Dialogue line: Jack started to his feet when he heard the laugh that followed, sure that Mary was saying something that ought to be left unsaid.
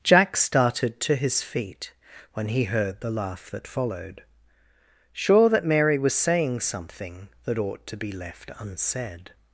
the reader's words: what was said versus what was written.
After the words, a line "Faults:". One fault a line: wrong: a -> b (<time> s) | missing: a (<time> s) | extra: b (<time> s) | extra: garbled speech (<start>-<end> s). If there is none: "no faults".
Jack started to his feet when he heard the laugh that followed, sure that Mary was saying something that ought to be left unsaid.
Faults:
no faults